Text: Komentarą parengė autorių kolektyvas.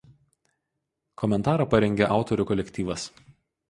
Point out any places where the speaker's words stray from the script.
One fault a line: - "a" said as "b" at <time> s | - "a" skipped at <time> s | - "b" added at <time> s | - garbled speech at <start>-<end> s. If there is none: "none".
none